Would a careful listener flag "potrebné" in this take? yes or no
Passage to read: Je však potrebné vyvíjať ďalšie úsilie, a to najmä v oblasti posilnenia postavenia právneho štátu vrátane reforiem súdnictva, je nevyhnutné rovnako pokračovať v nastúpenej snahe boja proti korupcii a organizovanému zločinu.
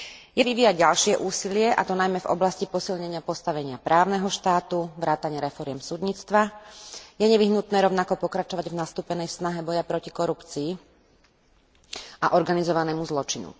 yes